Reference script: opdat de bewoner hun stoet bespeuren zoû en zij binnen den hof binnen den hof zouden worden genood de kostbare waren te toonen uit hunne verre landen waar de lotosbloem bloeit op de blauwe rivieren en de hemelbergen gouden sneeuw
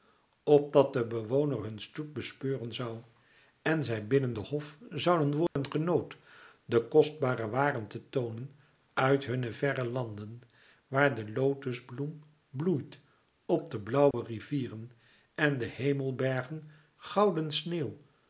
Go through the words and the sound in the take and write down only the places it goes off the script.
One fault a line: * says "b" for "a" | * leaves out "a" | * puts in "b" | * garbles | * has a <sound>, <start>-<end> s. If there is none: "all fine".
* leaves out "binnen den hof"
* has a dropout, 5.5-5.6 s
* has a dropout, 14.1-14.1 s